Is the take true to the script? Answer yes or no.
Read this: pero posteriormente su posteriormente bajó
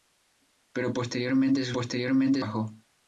yes